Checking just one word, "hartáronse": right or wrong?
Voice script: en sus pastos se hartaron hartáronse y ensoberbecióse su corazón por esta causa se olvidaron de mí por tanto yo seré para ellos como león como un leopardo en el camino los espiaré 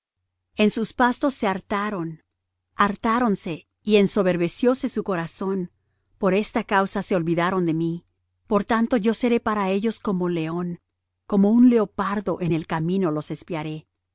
right